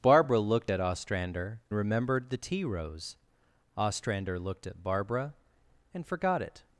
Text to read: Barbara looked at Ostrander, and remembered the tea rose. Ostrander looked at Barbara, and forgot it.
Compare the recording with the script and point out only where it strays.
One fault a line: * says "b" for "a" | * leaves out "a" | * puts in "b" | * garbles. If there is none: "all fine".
* leaves out "and"